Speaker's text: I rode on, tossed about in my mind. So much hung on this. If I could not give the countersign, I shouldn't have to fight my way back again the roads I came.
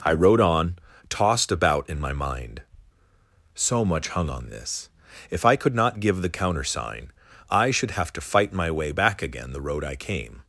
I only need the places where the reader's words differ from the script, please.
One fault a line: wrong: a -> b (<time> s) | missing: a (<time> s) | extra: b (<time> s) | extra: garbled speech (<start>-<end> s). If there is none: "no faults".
wrong: shouldn't -> should (7.7 s)
wrong: roads -> road (9.6 s)